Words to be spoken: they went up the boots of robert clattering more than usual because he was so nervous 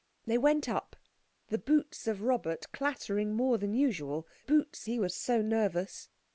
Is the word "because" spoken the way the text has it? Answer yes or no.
no